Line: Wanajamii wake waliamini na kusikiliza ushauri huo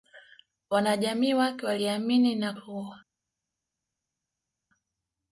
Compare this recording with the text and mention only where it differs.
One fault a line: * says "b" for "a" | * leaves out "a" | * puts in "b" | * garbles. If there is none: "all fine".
* leaves out "kusikiliza ushauri"